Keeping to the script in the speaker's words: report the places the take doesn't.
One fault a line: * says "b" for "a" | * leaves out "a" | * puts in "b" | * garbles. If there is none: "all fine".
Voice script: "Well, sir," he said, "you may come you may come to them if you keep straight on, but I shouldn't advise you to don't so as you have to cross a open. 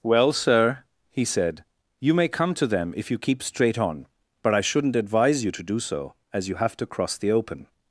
* leaves out "you may come"
* says "do" for "don't"
* says "the" for "a"